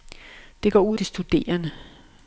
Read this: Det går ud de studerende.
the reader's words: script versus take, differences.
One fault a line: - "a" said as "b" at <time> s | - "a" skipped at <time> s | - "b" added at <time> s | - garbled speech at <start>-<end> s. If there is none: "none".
none